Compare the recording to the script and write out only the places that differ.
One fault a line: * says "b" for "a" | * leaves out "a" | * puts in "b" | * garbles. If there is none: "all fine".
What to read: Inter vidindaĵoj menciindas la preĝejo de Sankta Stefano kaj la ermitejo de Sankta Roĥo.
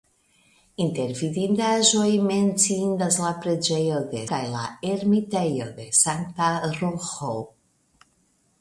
* leaves out "Sankta Stefano"